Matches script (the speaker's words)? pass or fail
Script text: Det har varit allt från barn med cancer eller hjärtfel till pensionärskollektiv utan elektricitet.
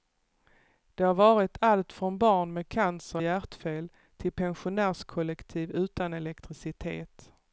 fail